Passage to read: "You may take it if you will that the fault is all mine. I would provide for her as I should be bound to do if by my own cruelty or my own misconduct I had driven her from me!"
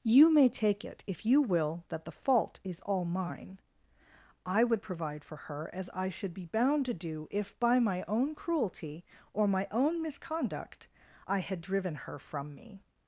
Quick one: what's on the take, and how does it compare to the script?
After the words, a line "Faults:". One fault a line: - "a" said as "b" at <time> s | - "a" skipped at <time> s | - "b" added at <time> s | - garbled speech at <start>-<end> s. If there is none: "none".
"You may take it if you will that the fault is all mine. I would provide for her as I should be bound to do if by my own cruelty or my own misconduct I had driven her from me!"
Faults:
none